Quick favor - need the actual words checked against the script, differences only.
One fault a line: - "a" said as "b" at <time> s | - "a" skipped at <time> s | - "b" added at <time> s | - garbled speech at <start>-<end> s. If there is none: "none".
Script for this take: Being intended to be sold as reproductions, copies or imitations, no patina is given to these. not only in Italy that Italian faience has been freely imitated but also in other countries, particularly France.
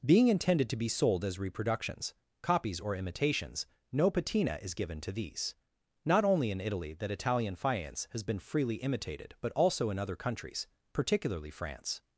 none